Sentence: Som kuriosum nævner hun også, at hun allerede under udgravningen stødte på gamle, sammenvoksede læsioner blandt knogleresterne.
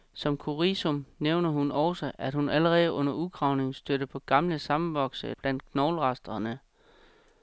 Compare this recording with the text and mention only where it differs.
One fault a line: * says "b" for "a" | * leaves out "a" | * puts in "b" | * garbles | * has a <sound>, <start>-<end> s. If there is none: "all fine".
* leaves out "læsioner"